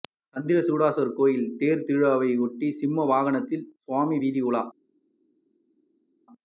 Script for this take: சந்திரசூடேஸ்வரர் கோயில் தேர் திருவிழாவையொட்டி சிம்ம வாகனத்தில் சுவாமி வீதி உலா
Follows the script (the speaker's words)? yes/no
yes